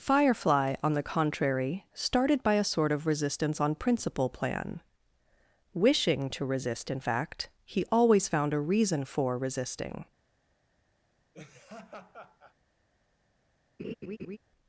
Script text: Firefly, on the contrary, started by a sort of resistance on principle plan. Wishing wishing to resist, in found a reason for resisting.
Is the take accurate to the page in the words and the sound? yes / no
no